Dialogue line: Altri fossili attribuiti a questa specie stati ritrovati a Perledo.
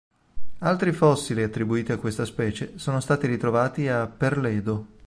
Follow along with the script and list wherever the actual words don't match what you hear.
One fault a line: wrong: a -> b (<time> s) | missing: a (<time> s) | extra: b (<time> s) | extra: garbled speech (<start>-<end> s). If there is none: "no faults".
extra: sono (2.8 s)